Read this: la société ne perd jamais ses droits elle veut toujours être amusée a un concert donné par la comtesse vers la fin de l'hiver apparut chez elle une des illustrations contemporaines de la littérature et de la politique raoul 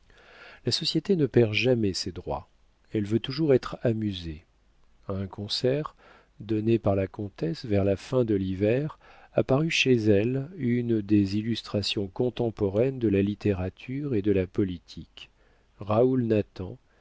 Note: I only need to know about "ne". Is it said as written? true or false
true